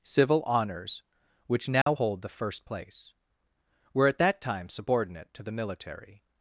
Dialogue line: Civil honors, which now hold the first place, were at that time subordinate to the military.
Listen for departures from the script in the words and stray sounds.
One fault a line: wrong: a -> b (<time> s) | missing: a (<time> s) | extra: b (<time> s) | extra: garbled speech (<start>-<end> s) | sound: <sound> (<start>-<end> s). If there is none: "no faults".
sound: dropout (1.8-1.9 s)